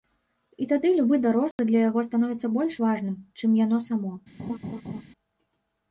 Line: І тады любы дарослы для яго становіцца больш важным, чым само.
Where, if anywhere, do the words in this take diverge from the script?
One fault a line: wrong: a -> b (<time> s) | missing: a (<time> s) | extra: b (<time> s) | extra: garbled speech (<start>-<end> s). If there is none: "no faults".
extra: яно (3.7 s)